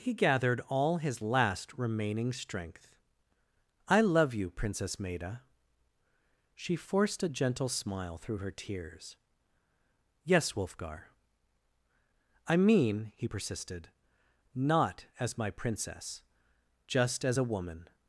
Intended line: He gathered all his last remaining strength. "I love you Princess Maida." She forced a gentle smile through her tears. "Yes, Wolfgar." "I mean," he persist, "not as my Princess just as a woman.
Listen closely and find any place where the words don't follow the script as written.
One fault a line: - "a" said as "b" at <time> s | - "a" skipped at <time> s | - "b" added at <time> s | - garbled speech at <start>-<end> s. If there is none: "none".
- "persist" said as "persisted" at 13.2 s